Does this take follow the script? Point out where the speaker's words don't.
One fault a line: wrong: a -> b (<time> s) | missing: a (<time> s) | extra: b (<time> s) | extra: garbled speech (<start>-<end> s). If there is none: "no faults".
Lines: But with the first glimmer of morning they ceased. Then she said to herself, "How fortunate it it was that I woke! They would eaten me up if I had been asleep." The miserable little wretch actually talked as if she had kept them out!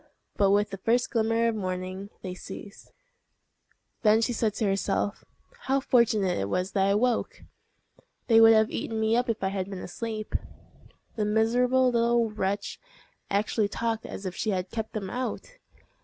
missing: it (6.5 s)
extra: have (8.5 s)